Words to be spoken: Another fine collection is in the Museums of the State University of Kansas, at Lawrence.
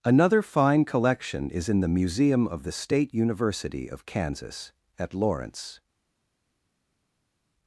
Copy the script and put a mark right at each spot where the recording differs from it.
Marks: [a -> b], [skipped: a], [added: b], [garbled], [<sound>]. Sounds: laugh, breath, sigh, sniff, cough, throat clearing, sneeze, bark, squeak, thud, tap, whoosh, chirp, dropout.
Another fine collection is in the [Museums -> Museum] of the State University of Kansas, at Lawrence.